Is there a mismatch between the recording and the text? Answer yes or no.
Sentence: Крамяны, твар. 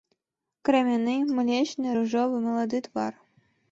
yes